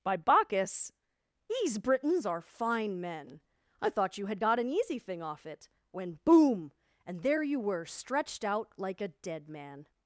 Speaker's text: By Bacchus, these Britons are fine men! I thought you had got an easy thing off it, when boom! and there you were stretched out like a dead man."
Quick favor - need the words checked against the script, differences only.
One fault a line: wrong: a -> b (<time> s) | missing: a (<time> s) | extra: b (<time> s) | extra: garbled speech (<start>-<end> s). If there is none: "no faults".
no faults